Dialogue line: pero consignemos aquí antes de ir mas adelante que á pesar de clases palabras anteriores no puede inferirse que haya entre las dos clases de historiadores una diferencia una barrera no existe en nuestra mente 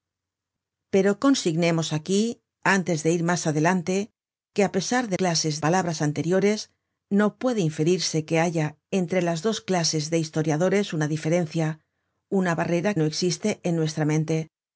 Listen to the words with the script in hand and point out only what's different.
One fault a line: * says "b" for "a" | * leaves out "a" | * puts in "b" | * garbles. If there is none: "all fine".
all fine